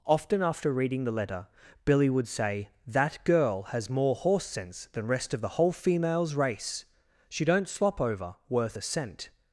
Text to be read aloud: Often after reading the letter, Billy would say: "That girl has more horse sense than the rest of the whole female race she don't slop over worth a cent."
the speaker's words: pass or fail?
fail